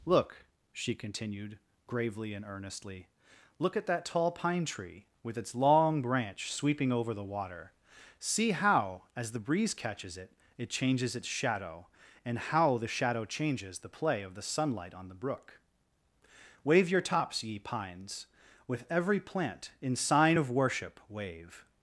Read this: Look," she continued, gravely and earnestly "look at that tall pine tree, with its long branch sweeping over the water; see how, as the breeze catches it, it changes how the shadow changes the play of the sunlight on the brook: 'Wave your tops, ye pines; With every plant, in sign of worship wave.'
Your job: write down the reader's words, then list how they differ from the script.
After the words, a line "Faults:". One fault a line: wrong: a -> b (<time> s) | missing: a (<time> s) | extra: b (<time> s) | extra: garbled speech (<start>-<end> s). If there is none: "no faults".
Look," she continued, gravely and earnestly "look at that tall pine tree, with its long branch sweeping over the water; see how, as the breeze catches it, it changes its shadow, and how the shadow changes the play of the sunlight on the brook: 'Wave your tops, ye pines; With every plant, in sign of worship wave.'
Faults:
extra: its shadow and (11.2 s)